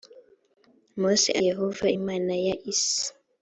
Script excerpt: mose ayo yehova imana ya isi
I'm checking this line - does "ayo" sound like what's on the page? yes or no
no